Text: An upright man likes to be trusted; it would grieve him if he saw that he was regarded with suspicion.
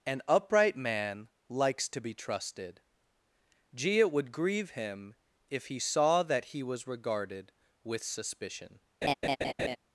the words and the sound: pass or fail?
fail